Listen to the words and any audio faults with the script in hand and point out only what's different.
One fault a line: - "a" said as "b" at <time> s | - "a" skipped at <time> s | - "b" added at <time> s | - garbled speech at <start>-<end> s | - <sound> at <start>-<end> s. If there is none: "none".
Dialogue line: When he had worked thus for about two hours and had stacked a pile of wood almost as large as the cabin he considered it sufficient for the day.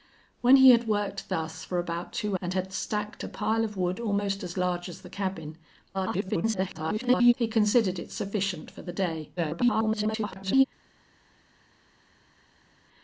- "hours" skipped at 2.4 s
- garbled speech at 5.9-7.3 s
- garbled speech at 9.4-10.6 s